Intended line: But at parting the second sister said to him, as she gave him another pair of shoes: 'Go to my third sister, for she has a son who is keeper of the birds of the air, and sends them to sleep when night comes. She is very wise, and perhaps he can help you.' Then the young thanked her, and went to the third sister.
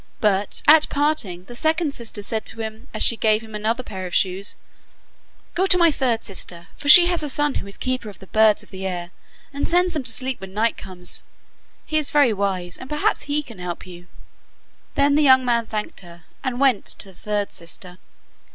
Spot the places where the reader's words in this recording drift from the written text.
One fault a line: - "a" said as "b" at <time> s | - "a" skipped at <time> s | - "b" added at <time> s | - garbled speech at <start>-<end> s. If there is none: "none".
- "She" said as "He" at 11.8 s
- "man" added at 15.4 s